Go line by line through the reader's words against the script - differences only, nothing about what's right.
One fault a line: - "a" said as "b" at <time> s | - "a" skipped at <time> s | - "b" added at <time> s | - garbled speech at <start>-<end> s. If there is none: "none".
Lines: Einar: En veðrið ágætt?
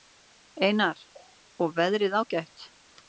- "En" said as "Og" at 1.7 s